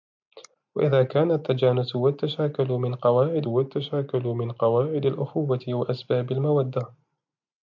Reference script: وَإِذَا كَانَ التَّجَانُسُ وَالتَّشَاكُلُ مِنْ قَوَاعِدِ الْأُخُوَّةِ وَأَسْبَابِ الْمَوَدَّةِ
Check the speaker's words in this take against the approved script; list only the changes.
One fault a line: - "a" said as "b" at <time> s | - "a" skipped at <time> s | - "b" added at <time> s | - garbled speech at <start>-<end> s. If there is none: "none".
- "وَالتَّشَاكُلُ مِنْ قَوَاعِدِ" added at 3.5 s